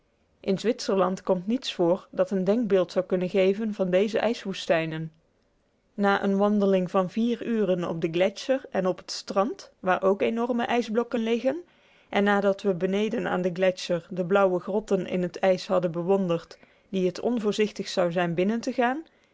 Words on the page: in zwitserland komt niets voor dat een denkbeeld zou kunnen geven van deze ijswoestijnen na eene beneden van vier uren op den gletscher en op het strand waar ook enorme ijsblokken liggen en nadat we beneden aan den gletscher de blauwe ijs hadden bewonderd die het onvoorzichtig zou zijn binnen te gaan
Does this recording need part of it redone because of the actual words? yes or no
yes